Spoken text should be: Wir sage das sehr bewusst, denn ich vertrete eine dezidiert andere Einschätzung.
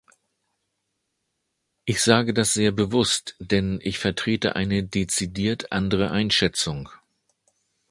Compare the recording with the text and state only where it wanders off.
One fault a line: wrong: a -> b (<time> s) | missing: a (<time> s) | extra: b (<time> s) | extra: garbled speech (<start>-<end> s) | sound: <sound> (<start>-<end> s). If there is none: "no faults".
wrong: Wir -> Ich (1.8 s)